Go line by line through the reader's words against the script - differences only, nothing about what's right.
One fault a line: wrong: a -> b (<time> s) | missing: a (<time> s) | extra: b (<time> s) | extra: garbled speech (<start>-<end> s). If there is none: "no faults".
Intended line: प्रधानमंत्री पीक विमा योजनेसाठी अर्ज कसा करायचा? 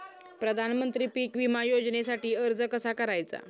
no faults